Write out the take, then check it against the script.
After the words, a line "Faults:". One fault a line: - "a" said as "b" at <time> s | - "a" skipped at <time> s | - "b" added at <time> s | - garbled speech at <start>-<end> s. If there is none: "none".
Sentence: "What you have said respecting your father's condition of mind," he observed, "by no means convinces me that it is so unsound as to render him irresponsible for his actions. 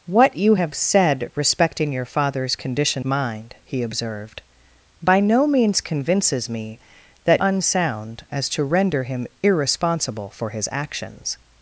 "What you have said respecting your father's condition mind," he observed, "by no means convinces me that unsound as to render him irresponsible for his actions.
Faults:
- "of" skipped at 3.0 s
- "it is so" skipped at 7.4 s